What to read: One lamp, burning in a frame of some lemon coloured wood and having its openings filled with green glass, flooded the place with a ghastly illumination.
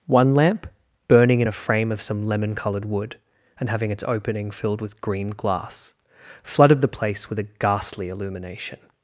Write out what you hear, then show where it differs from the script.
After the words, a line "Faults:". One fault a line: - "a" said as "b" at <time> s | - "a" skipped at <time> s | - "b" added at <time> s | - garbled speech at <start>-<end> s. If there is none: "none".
One lamp, burning in a frame of some lemon coloured wood and having its opening filled with green glass, flooded the place with a ghastly illumination.
Faults:
- "openings" said as "opening" at 4.0 s